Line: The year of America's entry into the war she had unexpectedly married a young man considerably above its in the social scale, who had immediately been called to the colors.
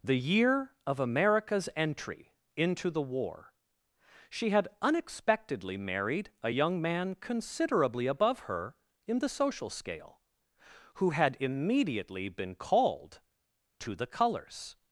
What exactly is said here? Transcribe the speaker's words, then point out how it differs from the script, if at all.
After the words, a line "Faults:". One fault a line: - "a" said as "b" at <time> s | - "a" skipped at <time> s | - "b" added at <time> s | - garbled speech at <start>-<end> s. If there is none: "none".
The year of America's entry into the war she had unexpectedly married a young man considerably above her in the social scale, who had immediately been called to the colors.
Faults:
- "its" said as "her" at 8.4 s